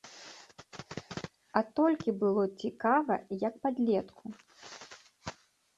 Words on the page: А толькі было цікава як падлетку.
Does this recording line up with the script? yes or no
yes